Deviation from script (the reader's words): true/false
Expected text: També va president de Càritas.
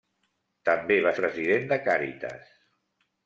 false